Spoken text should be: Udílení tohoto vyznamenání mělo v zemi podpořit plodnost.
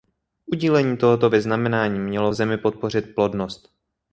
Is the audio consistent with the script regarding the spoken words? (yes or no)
yes